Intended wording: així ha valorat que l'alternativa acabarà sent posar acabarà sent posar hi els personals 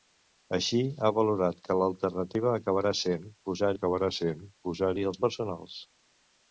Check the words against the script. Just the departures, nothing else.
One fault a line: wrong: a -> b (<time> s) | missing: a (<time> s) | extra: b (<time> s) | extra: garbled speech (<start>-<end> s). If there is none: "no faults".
no faults